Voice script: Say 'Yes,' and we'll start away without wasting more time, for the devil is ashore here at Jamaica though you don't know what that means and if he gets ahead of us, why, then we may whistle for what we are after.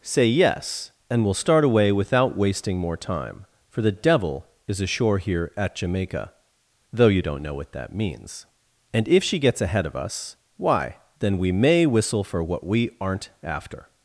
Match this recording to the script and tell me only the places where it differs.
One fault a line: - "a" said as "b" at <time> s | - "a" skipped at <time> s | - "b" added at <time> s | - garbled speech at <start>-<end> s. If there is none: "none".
- "he" said as "she" at 9.2 s
- "are" said as "aren't" at 13.0 s